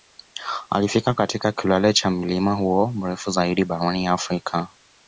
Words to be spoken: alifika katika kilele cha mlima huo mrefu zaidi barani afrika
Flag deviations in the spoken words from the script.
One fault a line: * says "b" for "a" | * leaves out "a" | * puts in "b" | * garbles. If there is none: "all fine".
all fine